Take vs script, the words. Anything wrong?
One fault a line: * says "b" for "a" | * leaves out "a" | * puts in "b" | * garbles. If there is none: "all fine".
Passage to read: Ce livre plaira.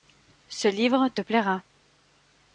* puts in "te"